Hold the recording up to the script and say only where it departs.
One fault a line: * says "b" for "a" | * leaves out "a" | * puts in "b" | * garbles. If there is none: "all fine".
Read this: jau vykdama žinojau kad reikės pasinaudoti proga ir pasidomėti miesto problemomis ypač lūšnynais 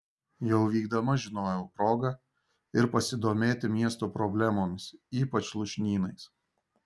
* leaves out "kad reikės pasinaudoti"